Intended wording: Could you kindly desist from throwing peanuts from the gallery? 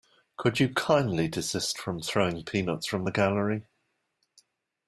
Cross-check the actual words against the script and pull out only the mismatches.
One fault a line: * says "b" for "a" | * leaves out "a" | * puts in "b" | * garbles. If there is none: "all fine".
all fine